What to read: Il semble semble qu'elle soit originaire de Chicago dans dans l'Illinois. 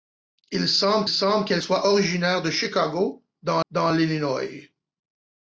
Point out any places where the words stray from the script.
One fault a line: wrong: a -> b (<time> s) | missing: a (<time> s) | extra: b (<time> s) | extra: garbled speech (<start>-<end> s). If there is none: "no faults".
no faults